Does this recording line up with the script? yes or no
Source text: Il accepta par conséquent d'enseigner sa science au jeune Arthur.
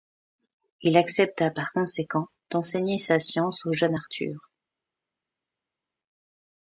yes